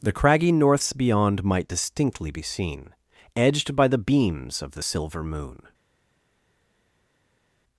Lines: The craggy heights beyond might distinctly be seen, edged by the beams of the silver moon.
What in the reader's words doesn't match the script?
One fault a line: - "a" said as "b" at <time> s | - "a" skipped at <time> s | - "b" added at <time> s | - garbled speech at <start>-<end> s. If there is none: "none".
- "heights" said as "norths" at 0.5 s